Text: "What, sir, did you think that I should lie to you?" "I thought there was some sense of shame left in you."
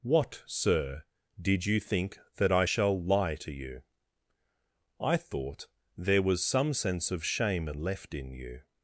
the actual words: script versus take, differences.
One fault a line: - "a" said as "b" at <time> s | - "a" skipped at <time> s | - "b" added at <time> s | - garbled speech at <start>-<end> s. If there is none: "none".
- "should" said as "shall" at 2.6 s